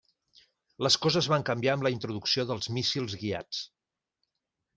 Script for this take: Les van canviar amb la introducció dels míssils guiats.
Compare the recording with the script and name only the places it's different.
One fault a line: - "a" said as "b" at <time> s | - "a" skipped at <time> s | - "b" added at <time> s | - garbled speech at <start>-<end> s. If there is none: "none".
- "coses" added at 1.0 s